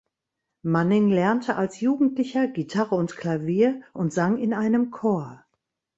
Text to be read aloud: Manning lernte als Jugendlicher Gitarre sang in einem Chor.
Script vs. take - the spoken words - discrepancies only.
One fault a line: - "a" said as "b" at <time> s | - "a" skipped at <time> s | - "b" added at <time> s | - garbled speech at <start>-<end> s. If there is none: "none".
- "und Klavier und" added at 3.0 s